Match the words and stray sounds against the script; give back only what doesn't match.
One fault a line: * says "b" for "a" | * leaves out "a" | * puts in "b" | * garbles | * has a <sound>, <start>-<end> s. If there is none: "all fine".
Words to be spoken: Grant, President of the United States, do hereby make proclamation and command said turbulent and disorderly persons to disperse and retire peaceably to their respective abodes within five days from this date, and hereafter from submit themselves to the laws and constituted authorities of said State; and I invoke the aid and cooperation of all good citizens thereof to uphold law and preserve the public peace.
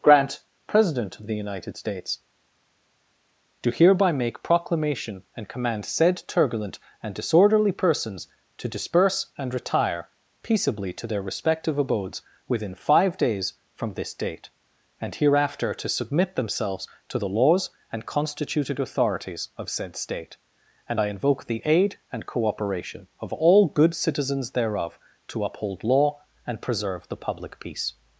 * says "to" for "from"